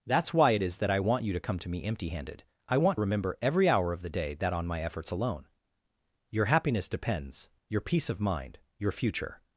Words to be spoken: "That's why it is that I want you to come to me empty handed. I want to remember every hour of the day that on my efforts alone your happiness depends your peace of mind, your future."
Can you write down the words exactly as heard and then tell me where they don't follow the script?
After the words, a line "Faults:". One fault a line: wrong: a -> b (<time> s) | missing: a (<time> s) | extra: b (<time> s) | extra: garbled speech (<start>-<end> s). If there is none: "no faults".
"That's why it is that I want you to come to me empty handed. I want remember every hour of the day that on my efforts alone your happiness depends your peace of mind, your future."
Faults:
missing: to (3.0 s)